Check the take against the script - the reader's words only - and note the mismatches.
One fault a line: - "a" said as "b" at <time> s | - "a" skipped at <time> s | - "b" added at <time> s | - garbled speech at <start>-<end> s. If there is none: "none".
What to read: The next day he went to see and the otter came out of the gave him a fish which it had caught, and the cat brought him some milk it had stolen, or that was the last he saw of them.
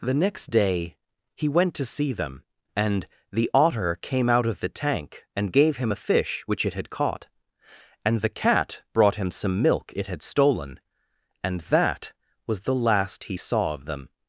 - "them" added at 2.1 s
- "tank and" added at 4.7 s
- "or" said as "and" at 11.4 s